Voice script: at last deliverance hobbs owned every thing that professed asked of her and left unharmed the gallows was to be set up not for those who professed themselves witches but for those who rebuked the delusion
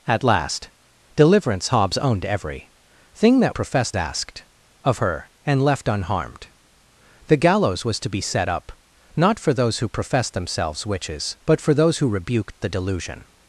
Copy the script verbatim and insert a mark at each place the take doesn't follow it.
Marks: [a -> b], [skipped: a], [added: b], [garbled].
at last deliverance hobbs owned every thing that professed asked of her and left unharmed the gallows was to be set up not for those who professed themselves witches but for those who rebuked the delusion